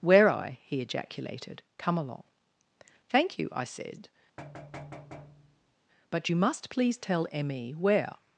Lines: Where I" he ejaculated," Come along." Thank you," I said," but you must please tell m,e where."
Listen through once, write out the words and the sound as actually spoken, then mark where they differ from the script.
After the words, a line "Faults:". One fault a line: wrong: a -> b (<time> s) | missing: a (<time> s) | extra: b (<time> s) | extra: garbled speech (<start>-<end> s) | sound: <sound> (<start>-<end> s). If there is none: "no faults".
Where I" he ejaculated," Come along." Thank you," I said," but you must please tell m,e where."
Faults:
sound: thud (4.4-5.8 s)